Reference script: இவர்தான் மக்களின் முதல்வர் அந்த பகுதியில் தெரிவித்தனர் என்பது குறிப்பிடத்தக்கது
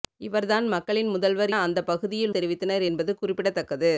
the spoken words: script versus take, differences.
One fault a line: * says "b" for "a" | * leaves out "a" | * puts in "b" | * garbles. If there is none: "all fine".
all fine